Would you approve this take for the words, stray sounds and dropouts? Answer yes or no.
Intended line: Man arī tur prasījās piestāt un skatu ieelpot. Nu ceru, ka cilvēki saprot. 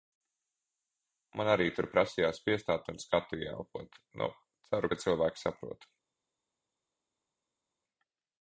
yes